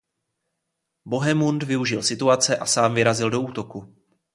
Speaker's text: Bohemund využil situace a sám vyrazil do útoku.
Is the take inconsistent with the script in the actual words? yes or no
no